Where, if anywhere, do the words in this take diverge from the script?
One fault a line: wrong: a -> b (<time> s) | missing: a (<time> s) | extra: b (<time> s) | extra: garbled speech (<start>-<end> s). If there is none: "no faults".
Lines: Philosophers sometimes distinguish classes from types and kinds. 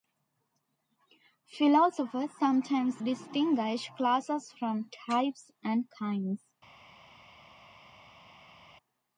no faults